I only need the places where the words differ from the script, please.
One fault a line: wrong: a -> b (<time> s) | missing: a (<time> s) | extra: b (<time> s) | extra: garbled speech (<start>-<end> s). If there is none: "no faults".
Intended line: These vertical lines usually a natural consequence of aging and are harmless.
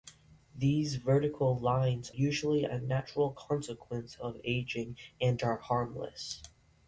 no faults